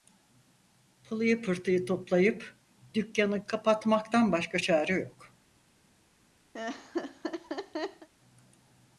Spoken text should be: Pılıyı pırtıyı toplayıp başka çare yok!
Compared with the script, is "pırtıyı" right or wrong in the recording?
right